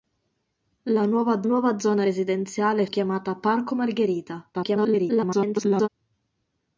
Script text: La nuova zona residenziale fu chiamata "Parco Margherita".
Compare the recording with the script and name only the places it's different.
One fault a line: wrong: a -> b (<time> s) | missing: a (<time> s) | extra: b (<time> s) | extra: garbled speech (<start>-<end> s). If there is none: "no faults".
extra: nuova (1.4 s)
missing: fu (2.9 s)
extra: garbled speech (4.5-5.9 s)